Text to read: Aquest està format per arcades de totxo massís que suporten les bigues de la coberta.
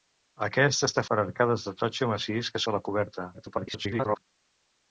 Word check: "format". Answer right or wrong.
wrong